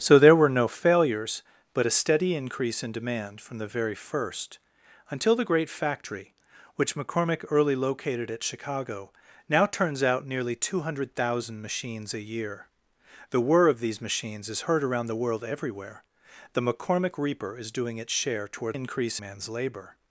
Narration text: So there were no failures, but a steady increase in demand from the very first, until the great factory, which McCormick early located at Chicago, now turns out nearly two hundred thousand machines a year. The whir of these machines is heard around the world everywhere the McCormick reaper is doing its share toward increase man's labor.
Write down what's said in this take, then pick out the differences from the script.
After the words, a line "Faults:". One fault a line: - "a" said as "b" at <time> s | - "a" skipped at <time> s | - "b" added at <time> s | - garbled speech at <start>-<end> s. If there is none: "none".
So there were no failures, but a steady increase in demand from the very first, until the great factory, which McCormick early located at Chicago, now turns out nearly two hundred thousand machines a year. The whir of these machines is heard around the world everywhere the McCormick reaper is doing its share toward increase man's labor.
Faults:
none